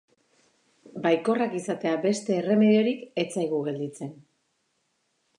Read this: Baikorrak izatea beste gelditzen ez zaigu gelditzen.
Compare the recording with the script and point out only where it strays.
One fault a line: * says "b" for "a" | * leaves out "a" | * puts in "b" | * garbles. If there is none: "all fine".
* says "erremediorik" for "gelditzen"